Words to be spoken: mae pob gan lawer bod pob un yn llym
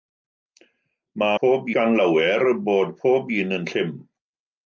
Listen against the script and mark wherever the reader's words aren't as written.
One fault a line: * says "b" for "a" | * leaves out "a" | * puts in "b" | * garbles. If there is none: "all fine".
all fine